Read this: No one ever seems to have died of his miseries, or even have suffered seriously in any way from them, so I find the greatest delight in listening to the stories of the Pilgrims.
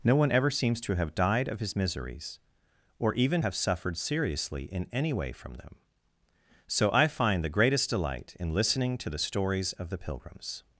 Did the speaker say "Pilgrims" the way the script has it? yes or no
yes